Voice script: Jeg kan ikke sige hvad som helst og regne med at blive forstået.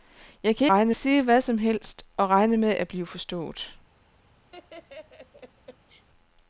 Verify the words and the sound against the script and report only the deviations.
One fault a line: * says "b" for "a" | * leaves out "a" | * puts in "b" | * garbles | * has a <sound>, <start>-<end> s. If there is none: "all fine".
* says "regne" for "ikke"
* has a laugh, 4.5-6.1 s